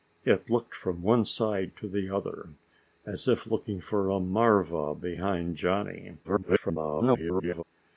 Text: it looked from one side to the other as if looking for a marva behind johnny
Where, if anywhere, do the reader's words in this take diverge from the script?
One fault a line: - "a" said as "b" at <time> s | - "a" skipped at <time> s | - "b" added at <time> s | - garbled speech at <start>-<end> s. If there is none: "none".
- garbled speech at 6.2-7.6 s